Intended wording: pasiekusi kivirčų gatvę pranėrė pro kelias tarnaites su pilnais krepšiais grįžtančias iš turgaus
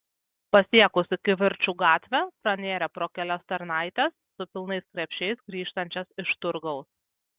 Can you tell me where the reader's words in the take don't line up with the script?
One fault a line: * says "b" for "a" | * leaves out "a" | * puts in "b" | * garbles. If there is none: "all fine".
all fine